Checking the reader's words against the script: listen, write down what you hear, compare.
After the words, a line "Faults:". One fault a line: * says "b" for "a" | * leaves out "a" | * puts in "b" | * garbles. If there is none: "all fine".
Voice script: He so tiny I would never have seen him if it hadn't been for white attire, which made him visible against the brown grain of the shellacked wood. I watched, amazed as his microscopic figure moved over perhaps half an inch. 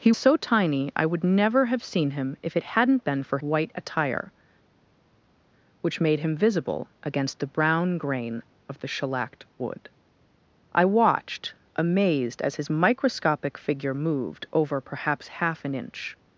He so tiny I would never have seen him if it hadn't been for white attire, which made him visible against the brown grain of the shellacked wood. I watched, amazed as his microscopic figure moved over perhaps half an inch.
Faults:
all fine